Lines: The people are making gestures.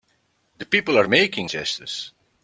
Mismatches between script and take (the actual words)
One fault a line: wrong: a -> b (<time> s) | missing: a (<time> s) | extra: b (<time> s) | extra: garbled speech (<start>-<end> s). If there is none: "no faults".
no faults